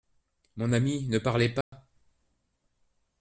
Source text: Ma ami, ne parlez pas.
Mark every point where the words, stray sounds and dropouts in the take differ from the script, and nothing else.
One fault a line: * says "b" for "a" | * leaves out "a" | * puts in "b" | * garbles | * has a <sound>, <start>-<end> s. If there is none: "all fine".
* says "Mon" for "Ma"
* has a dropout, 1.6-1.7 s